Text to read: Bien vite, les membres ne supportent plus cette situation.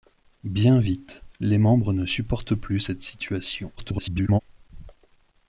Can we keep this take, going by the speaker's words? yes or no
no